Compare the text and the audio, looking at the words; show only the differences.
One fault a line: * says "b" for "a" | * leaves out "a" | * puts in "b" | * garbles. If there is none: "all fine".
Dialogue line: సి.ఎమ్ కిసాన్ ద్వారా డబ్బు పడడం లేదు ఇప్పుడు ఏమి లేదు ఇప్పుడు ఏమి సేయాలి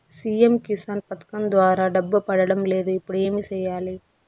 * puts in "పథకం"
* leaves out "లేదు ఇప్పుడు ఏమి"